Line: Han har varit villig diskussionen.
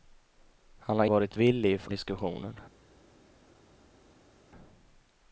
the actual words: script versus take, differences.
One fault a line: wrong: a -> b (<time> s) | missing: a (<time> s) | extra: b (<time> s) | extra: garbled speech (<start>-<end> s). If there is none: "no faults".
no faults